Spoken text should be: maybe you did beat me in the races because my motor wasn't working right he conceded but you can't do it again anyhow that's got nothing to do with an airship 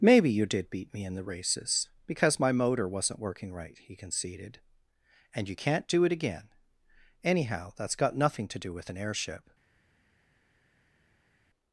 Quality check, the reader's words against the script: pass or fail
fail